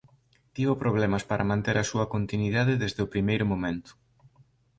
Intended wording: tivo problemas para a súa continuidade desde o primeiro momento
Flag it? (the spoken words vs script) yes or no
yes